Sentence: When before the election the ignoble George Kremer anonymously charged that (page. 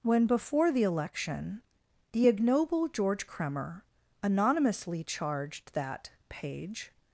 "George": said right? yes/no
yes